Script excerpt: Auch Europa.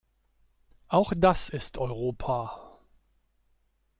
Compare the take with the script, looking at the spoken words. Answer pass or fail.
fail